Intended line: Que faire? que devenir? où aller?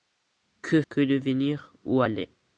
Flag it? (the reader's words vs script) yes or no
yes